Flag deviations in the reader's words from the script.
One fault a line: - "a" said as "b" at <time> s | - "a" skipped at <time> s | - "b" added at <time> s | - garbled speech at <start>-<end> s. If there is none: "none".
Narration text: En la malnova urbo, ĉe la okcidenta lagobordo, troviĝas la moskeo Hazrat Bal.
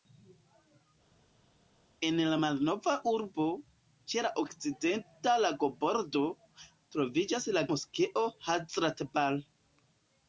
none